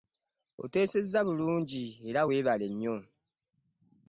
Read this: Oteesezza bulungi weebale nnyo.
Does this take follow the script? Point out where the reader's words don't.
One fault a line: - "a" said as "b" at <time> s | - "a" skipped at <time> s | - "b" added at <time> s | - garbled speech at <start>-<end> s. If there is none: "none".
- "era" added at 2.1 s